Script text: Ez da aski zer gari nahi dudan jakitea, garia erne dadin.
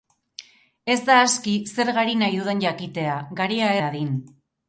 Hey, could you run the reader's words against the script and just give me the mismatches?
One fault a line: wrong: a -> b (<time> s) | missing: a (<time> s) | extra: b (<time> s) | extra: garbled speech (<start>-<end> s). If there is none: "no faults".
missing: erne (3.7 s)